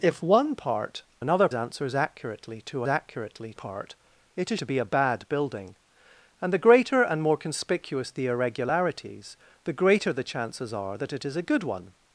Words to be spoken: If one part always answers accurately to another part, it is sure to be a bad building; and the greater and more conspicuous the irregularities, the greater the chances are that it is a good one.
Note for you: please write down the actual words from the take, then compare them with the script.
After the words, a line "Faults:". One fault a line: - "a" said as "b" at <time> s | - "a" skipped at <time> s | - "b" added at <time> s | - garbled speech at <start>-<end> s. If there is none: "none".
If one part another answers accurately to accurately part, it is to be a bad building; and the greater and more conspicuous the irregularities, the greater the chances are that it is a good one.
Faults:
- "always" said as "another" at 1.2 s
- "another" said as "accurately" at 2.9 s
- "sure" skipped at 4.6 s